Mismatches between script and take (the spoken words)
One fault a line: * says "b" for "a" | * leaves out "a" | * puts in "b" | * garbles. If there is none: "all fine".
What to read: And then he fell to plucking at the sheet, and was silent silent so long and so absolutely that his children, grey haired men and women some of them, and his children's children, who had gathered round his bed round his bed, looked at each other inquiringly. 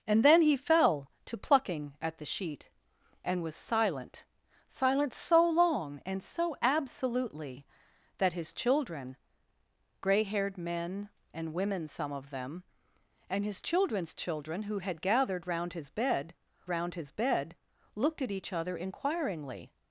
all fine